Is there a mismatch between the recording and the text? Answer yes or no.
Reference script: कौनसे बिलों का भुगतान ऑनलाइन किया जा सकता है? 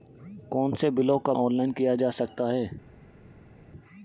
yes